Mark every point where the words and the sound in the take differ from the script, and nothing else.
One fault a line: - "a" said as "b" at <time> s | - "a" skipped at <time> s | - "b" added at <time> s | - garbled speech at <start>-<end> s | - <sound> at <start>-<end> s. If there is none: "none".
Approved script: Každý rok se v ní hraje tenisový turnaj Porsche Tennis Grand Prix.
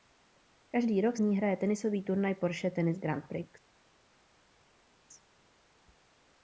- "se" skipped at 1.2 s